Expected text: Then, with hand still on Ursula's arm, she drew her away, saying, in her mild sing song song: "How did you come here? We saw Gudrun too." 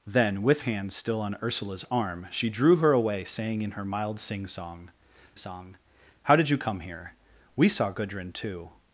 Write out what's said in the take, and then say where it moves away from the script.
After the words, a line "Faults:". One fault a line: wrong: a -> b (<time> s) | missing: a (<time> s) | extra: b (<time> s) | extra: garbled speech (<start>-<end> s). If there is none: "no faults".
Then, with hand still on Ursula's arm, she drew her away, saying, in her mild sing song song: "How did you come here? We saw Gudrun too."
Faults:
no faults